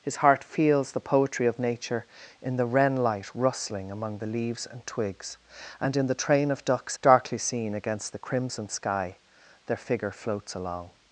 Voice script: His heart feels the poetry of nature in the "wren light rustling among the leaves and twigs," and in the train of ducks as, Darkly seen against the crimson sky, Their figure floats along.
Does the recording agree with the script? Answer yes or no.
no